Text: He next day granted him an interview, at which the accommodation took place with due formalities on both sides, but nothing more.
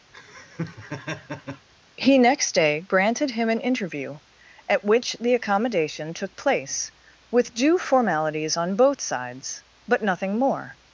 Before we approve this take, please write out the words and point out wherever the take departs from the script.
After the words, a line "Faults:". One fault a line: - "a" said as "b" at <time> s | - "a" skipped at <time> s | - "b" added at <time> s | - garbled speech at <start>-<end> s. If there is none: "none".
He next day granted him an interview, at which the accommodation took place with due formalities on both sides, but nothing more.
Faults:
none